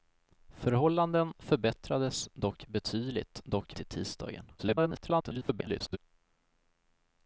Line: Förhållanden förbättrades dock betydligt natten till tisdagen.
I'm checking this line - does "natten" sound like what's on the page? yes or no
no